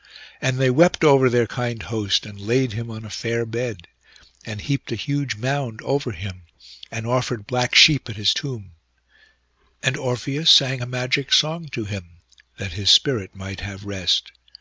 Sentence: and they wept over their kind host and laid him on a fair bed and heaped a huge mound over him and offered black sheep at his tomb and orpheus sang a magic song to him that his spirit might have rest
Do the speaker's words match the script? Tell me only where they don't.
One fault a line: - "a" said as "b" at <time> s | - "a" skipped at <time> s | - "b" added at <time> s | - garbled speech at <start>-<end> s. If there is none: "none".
none